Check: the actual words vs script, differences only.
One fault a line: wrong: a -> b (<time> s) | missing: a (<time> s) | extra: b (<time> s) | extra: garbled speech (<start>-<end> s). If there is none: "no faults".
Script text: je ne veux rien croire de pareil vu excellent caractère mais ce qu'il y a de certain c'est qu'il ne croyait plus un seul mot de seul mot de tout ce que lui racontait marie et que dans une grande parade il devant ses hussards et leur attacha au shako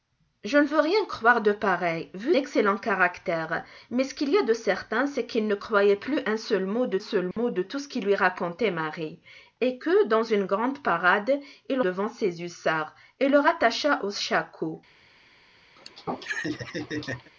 no faults